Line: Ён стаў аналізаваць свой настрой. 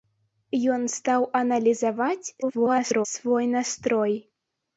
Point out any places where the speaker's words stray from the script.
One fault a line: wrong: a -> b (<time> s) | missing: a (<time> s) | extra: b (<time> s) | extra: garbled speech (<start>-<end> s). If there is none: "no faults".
extra: garbled speech (2.4-3.1 s)